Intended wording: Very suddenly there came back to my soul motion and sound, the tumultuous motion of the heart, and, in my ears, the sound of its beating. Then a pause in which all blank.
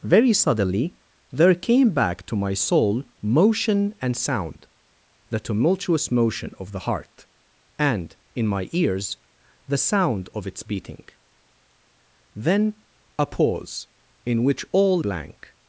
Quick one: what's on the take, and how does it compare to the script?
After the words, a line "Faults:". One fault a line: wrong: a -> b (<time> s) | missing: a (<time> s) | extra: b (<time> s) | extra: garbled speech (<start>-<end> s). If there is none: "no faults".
Very suddenly there came back to my soul motion and sound, the tumultuous motion of the heart, and, in my ears, the sound of its beating. Then a pause in which all blank.
Faults:
no faults